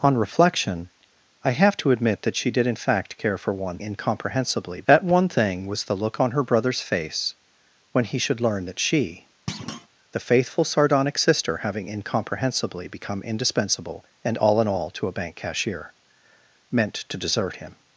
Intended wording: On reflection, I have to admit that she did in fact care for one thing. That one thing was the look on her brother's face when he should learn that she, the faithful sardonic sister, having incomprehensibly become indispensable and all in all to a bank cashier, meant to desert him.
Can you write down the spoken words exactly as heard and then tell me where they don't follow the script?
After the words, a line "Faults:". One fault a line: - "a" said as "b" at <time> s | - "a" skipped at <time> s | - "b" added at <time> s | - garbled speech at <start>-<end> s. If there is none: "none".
On reflection, I have to admit that she did in fact care for one incomprehensibly. That one thing was the look on her brother's face when he should learn that she, the faithful sardonic sister, having incomprehensibly become indispensable and all in all to a bank cashier, meant to desert him.
Faults:
- "thing" said as "incomprehensibly" at 3.8 s